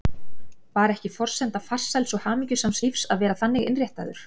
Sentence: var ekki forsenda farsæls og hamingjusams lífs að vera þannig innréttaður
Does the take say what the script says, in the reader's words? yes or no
yes